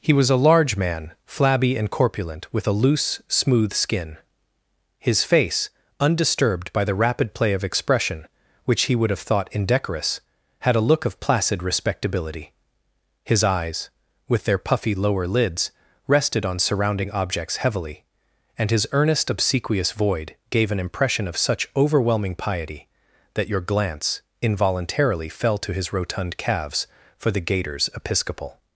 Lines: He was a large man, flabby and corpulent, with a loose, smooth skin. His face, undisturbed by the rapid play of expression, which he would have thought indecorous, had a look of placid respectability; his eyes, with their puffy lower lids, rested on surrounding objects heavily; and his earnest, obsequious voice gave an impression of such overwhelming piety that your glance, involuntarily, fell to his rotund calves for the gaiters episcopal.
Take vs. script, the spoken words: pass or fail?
fail